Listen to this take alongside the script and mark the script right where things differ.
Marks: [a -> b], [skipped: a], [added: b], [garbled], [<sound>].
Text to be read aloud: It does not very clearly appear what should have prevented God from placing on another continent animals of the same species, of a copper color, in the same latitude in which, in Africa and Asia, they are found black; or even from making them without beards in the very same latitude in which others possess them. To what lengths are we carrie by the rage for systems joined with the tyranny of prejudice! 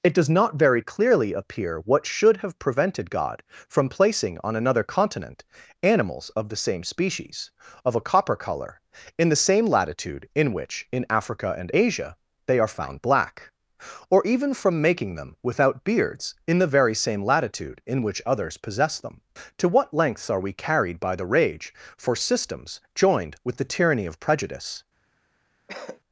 It does not very clearly appear what should have prevented God from placing on another continent animals of the same species, of a copper color, in the same latitude in which, in Africa and Asia, they are found black; or even from making them without beards in the very same latitude in which others possess them. To what lengths are we [carrie -> carried] by the rage for systems joined with the tyranny of prejudice! [cough]